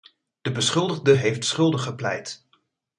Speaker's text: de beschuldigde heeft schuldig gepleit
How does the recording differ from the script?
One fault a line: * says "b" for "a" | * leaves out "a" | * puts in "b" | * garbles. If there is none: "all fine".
all fine